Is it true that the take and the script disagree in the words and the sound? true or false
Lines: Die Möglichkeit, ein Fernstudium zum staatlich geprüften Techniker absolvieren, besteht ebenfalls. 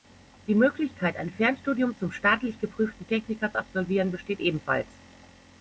false